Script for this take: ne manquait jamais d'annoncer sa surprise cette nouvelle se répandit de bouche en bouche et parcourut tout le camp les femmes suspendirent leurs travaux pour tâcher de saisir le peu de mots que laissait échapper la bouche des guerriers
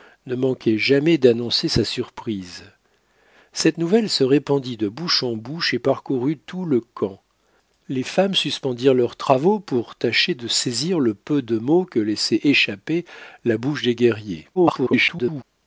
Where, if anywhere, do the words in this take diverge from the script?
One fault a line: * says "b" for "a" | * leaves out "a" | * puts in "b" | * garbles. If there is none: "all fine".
* garbles